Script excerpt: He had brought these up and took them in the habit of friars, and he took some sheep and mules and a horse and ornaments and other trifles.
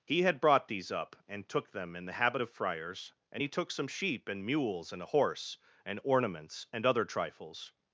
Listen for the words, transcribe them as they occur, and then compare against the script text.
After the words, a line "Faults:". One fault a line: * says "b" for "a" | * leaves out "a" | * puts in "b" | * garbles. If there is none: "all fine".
He had brought these up and took them in the habit of friars, and he took some sheep and mules and a horse and ornaments and other trifles.
Faults:
all fine